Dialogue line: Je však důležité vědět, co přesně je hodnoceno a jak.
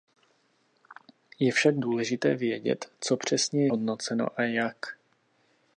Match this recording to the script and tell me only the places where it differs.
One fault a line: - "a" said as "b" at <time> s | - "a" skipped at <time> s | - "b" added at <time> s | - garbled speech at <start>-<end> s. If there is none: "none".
- "je" skipped at 3.7 s